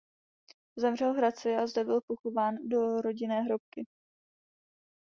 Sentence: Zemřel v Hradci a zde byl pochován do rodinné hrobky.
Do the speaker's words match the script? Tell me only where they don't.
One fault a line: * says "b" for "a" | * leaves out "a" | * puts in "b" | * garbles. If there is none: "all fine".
all fine